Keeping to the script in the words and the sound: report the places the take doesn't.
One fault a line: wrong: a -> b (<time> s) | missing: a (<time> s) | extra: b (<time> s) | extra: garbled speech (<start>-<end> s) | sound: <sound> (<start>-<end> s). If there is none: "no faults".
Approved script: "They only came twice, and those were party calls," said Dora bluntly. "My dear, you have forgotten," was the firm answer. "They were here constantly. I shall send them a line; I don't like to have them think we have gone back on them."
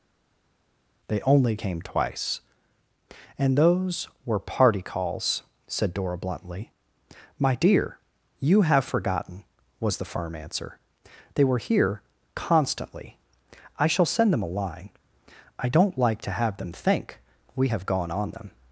missing: back (18.1 s)